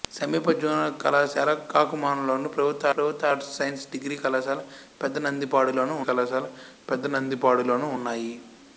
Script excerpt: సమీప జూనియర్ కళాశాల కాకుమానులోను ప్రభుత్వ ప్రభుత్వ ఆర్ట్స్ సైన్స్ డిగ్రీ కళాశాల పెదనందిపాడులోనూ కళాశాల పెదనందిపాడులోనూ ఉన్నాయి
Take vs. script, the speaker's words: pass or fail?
pass